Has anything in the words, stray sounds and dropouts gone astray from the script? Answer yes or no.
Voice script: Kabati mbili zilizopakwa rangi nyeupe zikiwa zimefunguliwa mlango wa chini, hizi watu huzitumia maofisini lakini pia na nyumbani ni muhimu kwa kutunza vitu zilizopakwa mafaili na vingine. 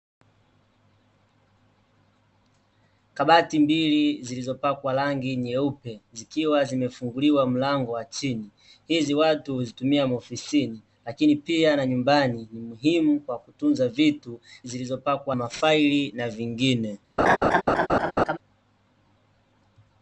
yes